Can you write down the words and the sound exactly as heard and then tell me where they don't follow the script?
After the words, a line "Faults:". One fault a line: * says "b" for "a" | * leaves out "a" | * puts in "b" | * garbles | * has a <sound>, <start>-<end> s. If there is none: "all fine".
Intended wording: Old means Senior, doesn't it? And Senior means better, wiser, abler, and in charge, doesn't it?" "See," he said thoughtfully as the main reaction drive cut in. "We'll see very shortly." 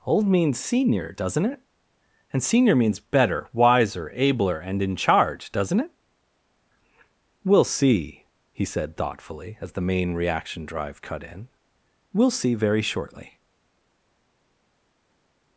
Old means Senior, doesn't it? And Senior means better, wiser, abler, and in charge, doesn't it?" "We'll see," he said thoughtfully as the main reaction drive cut in. "We'll see very shortly."
Faults:
* puts in "We'll"